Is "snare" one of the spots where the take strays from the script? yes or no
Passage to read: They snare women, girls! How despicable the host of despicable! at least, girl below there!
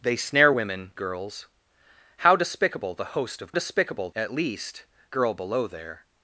no